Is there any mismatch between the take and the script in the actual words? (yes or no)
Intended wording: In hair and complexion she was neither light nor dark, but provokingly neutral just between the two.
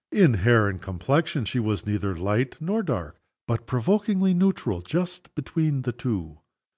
no